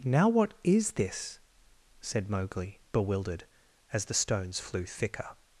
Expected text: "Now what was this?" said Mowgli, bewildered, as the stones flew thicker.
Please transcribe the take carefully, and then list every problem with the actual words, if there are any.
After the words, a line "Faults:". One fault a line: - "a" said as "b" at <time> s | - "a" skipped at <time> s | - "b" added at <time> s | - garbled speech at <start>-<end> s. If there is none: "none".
"Now what is this?" said Mowgli, bewildered, as the stones flew thicker.
Faults:
- "was" said as "is" at 0.6 s